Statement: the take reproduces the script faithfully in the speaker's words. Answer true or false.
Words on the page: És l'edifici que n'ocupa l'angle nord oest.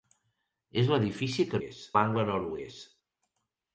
false